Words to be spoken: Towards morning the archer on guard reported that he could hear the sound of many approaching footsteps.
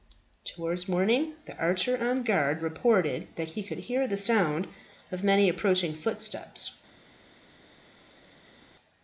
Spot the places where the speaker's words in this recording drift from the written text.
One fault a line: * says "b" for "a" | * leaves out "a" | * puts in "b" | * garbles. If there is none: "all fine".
all fine